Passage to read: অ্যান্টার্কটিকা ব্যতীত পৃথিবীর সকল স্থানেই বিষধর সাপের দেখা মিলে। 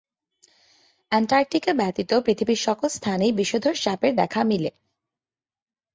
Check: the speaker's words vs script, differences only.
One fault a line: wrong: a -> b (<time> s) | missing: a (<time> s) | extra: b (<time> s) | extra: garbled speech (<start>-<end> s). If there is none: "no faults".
no faults